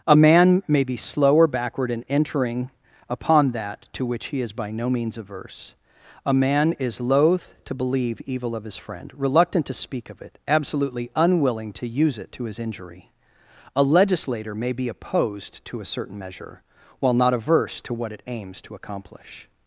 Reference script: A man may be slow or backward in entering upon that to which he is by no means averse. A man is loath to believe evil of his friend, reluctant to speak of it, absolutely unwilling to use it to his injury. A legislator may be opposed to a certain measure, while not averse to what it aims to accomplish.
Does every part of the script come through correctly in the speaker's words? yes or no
yes